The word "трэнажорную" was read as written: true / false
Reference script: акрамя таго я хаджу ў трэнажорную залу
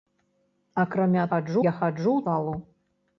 false